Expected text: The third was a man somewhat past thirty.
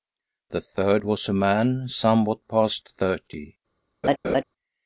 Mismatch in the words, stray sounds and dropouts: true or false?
true